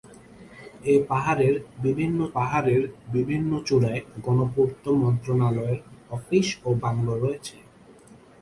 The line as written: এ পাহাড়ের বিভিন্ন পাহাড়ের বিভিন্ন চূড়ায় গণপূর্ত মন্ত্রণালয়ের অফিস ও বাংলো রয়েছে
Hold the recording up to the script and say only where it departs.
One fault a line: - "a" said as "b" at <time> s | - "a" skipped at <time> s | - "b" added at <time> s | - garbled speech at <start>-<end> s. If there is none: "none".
none